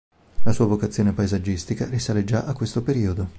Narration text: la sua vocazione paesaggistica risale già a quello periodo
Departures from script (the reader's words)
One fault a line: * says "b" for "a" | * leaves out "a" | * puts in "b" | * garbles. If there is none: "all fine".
* says "questo" for "quello"